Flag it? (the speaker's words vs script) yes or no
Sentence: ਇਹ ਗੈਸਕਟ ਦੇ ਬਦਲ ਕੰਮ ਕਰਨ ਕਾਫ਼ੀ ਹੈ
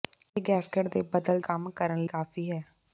no